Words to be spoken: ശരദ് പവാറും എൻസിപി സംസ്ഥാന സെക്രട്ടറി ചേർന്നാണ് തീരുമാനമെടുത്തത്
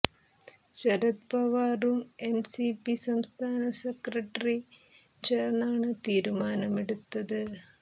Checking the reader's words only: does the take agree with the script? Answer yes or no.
yes